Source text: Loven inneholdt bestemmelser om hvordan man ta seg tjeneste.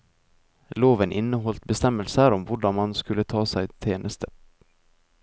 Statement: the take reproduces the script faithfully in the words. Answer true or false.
false